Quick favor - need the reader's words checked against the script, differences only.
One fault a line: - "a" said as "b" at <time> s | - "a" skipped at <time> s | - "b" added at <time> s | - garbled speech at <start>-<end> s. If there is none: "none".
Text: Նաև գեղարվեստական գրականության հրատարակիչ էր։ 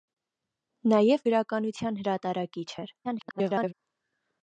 - "գեղարվեստական" skipped at 1.2 s
- garbled speech at 3.0-3.7 s